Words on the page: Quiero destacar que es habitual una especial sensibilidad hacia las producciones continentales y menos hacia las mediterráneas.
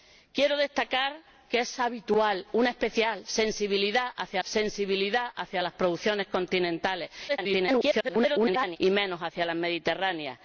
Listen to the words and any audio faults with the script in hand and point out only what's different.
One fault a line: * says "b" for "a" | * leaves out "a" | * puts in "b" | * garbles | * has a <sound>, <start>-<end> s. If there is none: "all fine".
* puts in "sensibilidad hacia"
* garbles